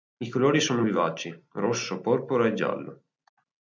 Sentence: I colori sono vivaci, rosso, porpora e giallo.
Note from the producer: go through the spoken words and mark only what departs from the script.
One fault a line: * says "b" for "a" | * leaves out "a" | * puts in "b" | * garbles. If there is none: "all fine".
all fine